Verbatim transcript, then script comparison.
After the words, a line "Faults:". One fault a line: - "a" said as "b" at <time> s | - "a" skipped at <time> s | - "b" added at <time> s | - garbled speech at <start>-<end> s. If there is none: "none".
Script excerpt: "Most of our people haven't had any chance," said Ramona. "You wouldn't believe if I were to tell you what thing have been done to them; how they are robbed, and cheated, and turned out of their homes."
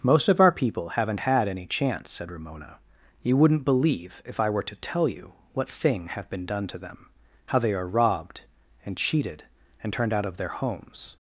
"Most of our people haven't had any chance," said Ramona. "You wouldn't believe if I were to tell you what thing have been done to them; how they are robbed, and cheated, and turned out of their homes."
Faults:
none